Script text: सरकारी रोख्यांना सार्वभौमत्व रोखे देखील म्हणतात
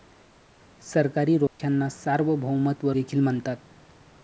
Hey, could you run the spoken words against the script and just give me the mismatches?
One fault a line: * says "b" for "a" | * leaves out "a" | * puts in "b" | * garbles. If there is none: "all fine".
* leaves out "रोखे"